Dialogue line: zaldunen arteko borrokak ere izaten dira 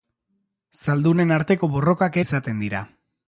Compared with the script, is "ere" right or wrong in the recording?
wrong